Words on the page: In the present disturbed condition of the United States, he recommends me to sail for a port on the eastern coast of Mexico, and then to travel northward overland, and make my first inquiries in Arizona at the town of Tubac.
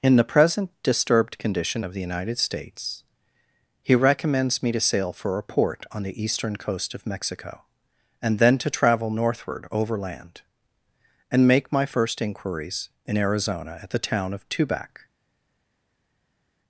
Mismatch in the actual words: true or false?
false